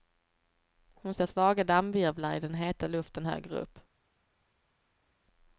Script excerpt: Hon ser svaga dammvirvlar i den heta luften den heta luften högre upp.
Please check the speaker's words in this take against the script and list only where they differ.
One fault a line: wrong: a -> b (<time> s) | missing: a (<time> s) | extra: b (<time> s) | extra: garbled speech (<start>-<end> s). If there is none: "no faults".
missing: den heta luften (3.3 s)